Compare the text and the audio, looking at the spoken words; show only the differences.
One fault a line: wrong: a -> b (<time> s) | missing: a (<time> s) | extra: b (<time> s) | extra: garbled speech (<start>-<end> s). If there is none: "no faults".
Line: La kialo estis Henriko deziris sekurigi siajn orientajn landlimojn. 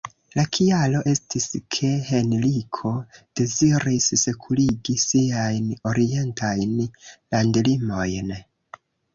extra: ke (1.8 s)